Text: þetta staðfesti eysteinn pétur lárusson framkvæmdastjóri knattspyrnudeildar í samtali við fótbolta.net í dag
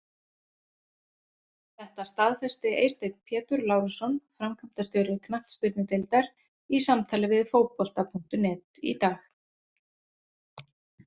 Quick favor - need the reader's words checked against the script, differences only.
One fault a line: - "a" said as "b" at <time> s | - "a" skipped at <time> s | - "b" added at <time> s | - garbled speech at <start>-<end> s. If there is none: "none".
none